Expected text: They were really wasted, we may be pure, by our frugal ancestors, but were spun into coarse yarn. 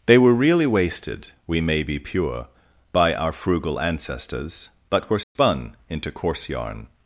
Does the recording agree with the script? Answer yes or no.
yes